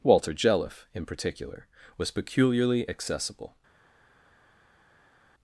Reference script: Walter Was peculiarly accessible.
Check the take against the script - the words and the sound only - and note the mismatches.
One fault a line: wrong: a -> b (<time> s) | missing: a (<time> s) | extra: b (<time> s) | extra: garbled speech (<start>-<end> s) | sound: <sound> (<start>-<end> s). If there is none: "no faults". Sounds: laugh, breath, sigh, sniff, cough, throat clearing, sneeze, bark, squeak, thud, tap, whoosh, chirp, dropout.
extra: Jelliffe in particular (0.3 s)